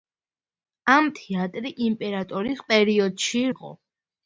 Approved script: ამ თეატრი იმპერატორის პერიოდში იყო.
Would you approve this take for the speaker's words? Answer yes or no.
yes